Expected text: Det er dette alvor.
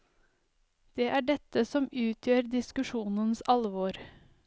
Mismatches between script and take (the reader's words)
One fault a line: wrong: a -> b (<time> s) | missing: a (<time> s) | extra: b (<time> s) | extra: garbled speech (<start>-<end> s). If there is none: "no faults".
extra: som utgjør diskusjonens (1.7 s)